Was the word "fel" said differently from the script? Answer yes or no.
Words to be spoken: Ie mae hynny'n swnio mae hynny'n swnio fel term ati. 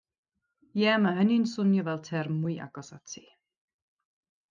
yes